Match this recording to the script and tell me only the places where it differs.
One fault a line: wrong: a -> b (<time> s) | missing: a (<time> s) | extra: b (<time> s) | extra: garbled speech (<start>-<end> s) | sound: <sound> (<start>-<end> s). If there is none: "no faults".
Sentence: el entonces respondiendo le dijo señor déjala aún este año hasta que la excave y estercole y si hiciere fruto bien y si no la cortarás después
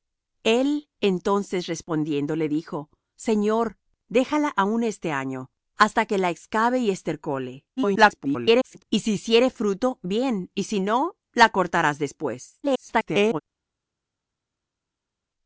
extra: garbled speech (7.8-8.8 s)
extra: garbled speech (12.6-13.4 s)